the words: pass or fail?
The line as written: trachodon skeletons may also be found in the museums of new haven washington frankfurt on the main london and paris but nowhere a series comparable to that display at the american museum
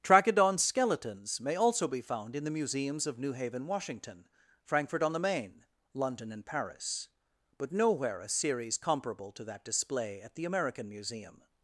pass